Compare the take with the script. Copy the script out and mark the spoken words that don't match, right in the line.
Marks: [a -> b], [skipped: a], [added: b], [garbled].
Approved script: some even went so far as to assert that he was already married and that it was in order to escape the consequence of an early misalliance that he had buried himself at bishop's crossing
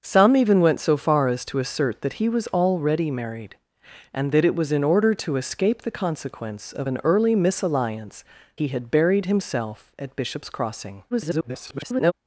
some even went so far as to assert that he was already married and that it was in order to escape the consequence of an early misalliance [skipped: that] he had buried himself at bishop's crossing [garbled]